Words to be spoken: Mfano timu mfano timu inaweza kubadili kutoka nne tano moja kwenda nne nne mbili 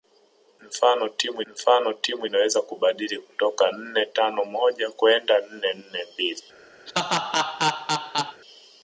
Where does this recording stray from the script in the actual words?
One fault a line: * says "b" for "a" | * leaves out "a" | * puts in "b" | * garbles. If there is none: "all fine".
all fine